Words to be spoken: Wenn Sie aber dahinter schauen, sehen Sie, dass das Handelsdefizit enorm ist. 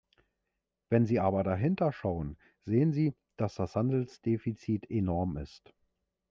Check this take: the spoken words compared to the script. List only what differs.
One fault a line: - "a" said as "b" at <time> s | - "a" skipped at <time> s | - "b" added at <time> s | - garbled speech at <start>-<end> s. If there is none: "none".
none